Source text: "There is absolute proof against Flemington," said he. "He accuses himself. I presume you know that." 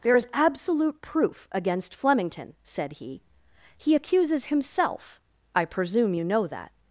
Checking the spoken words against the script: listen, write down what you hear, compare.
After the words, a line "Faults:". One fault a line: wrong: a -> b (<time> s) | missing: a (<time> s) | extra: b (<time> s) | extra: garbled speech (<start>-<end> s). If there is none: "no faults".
"There is absolute proof against Flemington," said he. "He accuses himself. I presume you know that."
Faults:
no faults